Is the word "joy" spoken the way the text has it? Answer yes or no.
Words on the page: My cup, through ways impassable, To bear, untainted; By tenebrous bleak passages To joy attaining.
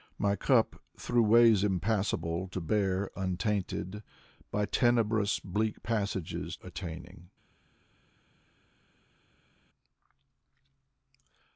no